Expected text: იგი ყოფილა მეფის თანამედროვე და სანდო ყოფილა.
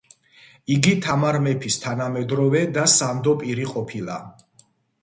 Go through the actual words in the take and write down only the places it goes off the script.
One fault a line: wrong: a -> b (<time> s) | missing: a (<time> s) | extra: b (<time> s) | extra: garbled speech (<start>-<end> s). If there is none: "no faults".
wrong: ყოფილა -> თამარ (1.1 s)
extra: პირი (3.5 s)